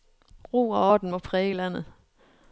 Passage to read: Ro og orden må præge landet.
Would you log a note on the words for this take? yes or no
no